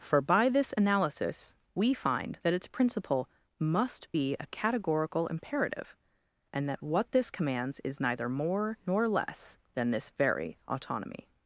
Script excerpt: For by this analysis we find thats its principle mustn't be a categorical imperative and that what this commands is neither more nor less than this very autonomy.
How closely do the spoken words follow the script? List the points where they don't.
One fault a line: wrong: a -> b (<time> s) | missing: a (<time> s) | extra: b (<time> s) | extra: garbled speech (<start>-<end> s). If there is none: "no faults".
wrong: thats -> that (2.4 s)
wrong: mustn't -> must (3.6 s)